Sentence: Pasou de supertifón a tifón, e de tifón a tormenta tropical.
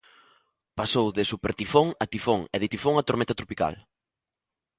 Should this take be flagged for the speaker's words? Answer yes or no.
no